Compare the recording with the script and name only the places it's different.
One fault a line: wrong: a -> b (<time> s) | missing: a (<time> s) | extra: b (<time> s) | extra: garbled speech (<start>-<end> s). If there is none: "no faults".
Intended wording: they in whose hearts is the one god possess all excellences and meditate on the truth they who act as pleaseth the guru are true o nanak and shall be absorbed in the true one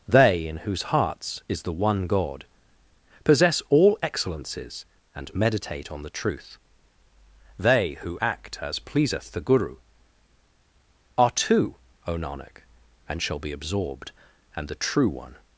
wrong: true -> two (11.3 s)
wrong: in -> and (14.5 s)